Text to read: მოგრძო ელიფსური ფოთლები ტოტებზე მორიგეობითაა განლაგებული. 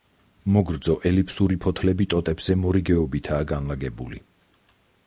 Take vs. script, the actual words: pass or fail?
pass